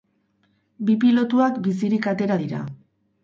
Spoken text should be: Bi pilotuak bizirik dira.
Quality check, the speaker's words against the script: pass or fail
fail